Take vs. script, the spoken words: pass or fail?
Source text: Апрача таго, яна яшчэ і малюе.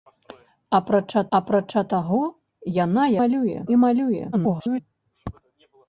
fail